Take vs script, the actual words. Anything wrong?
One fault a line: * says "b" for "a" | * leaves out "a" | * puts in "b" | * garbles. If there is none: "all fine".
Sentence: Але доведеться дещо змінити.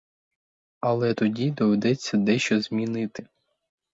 * puts in "тоді"